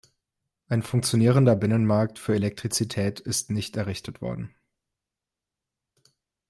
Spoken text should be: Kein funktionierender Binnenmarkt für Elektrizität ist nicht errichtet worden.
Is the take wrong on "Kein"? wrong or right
wrong